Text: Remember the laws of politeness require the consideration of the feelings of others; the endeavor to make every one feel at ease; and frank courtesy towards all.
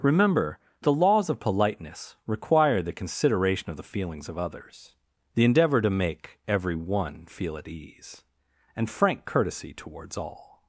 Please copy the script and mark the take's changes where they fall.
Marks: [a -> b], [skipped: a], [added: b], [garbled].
Remember the laws of politeness require the consideration of the feelings of others; the endeavor to make every one feel at ease; and frank courtesy towards all.